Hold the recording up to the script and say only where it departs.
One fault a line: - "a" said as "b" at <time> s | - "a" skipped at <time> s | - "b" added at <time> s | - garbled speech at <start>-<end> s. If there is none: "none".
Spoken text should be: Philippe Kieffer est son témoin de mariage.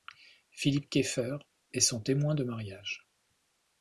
none